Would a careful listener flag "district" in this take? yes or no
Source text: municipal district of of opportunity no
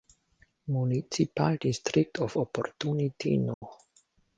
no